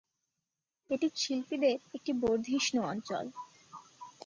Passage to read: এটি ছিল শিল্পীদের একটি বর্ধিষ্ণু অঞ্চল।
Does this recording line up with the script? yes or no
no